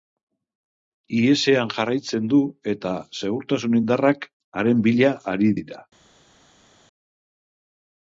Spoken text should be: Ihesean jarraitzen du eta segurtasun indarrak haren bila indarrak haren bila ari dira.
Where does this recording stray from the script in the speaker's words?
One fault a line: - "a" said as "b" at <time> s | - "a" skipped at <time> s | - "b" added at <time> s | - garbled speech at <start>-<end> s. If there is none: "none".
- "indarrak haren bila" skipped at 5.1 s